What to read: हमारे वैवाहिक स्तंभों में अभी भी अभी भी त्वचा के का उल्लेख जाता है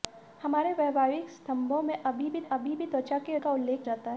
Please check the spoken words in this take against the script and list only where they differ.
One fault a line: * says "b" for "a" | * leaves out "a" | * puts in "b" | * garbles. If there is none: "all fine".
all fine